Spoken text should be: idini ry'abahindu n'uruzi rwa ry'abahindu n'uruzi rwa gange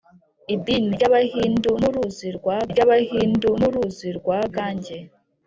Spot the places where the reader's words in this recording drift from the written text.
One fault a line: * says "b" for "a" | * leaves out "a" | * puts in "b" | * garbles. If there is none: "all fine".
all fine